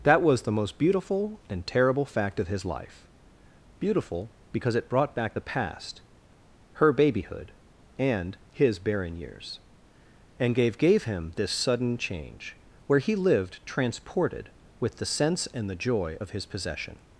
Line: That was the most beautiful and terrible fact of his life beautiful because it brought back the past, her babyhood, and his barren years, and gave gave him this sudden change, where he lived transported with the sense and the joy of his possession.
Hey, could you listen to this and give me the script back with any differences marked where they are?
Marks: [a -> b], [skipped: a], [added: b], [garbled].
That was the most beautiful and terrible fact of his life beautiful because it brought back the past, her babyhood, and his barren years, and gave gave him this sudden change, where he lived transported with the sense and the joy of his possession.